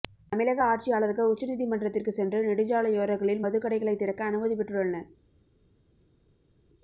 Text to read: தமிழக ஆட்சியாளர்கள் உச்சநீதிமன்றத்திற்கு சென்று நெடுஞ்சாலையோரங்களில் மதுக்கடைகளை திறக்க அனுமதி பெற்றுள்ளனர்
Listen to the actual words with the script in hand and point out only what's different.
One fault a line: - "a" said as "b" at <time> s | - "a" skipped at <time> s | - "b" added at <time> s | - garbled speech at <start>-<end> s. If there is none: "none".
none